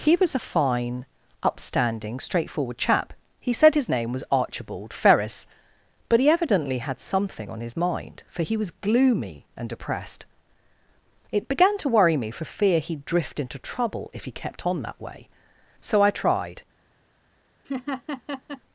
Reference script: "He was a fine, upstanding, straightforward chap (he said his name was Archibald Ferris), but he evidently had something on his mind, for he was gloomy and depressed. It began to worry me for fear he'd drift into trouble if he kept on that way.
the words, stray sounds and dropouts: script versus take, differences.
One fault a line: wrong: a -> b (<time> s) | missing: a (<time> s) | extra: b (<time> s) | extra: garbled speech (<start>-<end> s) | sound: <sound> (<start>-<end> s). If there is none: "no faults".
extra: So I tried (15.8 s)
sound: laugh (17.6-18.6 s)